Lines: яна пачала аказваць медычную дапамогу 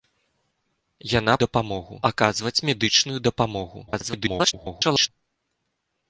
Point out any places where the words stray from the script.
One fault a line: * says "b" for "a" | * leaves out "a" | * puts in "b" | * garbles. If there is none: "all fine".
* says "дапамогу" for "пачала"
* garbles